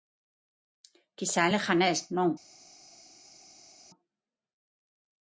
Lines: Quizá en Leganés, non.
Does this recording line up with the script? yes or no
yes